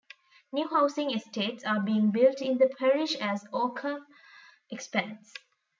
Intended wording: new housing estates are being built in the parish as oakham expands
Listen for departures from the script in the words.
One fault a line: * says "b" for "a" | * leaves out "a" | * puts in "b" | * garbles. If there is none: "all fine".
all fine